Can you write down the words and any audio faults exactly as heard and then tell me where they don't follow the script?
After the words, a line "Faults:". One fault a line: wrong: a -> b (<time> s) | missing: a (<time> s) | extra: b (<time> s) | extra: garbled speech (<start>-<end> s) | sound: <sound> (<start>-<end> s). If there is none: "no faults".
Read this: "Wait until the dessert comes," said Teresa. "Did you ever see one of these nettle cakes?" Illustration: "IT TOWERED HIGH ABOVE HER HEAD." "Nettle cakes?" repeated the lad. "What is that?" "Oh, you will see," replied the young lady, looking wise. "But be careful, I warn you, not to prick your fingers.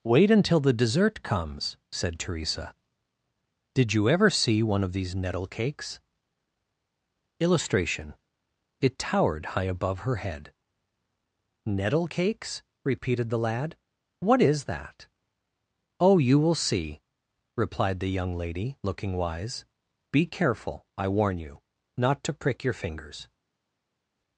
"Wait until the dessert comes," said Teresa. "Did you ever see one of these nettle cakes?" Illustration: "IT TOWERED HIGH ABOVE HER HEAD." "Nettle cakes?" repeated the lad. "What is that?" "Oh, you will see," replied the young lady, looking wise. "Be careful, I warn you, not to prick your fingers.
Faults:
missing: But (19.6 s)